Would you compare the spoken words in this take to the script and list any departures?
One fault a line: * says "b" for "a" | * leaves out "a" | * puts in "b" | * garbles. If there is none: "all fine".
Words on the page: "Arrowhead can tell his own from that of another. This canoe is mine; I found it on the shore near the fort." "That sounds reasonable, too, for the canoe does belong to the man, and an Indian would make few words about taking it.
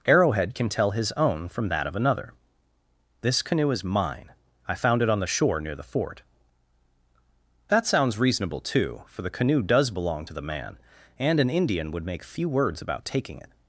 all fine